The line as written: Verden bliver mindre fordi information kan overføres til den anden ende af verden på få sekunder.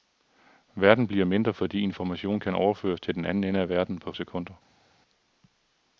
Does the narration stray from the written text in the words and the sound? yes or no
yes